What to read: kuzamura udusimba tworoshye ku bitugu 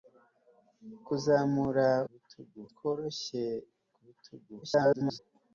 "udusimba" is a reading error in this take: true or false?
true